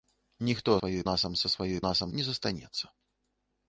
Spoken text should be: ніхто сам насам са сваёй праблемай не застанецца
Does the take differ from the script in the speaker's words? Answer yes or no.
yes